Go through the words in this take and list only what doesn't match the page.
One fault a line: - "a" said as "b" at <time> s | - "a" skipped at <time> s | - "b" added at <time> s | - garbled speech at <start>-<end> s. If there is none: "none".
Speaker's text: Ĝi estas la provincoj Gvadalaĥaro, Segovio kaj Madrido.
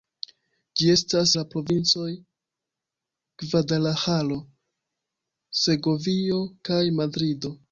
none